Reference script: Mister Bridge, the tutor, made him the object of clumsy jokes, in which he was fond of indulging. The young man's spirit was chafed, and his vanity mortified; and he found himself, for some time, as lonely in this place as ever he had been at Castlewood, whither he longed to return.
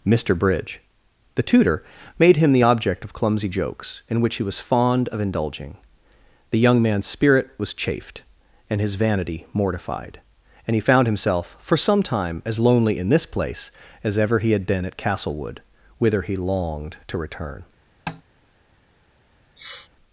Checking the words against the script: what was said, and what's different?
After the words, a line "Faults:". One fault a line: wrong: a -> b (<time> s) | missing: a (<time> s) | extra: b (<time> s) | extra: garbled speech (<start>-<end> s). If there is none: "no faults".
Mister Bridge, the tutor, made him the object of clumsy jokes, in which he was fond of indulging. The young man's spirit was chafed, and his vanity mortified; and he found himself, for some time, as lonely in this place as ever he had been at Castlewood, whither he longed to return.
Faults:
no faults